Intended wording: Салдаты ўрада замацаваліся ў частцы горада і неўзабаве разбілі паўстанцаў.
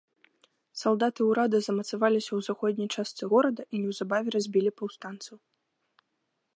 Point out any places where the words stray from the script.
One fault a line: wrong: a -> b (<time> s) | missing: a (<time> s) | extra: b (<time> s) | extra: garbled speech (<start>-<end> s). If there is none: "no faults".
extra: заходняй (2.5 s)